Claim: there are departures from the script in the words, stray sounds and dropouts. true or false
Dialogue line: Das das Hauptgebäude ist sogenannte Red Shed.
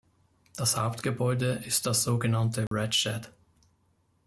true